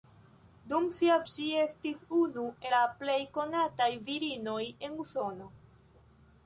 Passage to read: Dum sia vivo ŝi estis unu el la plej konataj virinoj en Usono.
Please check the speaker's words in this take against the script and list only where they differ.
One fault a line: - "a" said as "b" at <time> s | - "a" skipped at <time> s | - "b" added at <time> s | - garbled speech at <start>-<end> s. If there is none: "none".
- "vivo" skipped at 1.2 s
- "el" skipped at 2.5 s